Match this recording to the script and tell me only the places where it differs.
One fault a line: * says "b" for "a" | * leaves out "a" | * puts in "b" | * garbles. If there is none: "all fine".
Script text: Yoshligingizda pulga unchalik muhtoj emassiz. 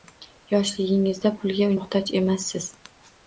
* leaves out "unchalik"